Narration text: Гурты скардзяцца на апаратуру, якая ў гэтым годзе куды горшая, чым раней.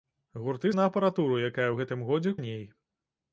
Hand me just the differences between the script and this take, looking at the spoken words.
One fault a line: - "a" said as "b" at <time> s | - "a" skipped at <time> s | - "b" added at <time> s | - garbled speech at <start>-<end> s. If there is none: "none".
- "скардзяцца" skipped at 0.7 s
- "куды горшая чым" skipped at 2.4 s